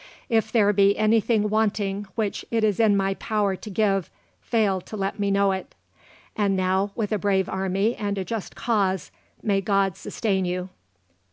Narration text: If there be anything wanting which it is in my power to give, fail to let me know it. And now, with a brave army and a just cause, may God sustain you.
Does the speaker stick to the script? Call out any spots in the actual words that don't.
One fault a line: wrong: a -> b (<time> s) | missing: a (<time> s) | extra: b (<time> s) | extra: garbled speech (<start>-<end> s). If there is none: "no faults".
no faults